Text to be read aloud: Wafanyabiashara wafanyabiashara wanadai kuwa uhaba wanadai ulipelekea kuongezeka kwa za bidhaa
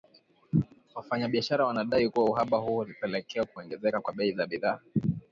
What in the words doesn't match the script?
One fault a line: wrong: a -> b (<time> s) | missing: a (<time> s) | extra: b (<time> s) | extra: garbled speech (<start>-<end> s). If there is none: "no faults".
missing: wafanyabiashara (1.6 s)
wrong: wanadai -> huo (2.6 s)
extra: bei (4.1 s)